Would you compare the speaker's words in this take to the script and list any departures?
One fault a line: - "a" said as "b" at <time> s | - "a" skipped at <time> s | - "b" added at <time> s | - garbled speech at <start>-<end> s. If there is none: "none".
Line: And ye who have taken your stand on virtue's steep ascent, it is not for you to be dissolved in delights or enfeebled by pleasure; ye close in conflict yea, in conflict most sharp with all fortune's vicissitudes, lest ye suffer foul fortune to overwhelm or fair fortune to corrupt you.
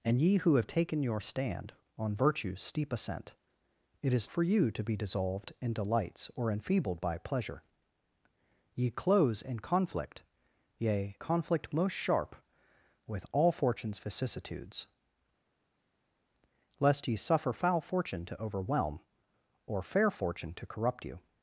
- "not" skipped at 4.3 s
- "in" skipped at 11.2 s